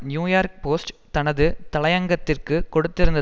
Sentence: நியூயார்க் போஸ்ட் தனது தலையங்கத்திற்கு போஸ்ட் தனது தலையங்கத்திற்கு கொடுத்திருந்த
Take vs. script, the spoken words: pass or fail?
fail